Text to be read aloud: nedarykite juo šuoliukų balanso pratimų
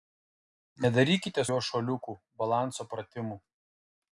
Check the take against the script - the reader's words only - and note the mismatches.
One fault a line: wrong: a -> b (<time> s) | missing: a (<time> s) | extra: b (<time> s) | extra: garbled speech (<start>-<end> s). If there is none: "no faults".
no faults